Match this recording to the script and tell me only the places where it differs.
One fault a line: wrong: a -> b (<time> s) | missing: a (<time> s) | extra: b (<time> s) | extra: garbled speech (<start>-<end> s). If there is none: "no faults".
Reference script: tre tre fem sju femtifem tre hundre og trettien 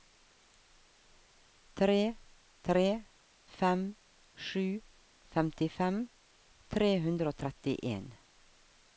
no faults